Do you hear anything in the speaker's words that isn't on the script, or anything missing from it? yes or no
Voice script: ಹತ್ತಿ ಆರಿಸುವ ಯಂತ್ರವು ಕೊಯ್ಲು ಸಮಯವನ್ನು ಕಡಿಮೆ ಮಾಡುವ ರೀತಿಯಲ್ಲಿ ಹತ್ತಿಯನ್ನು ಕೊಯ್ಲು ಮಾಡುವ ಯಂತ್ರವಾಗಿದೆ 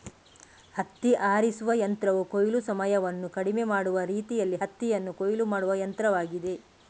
no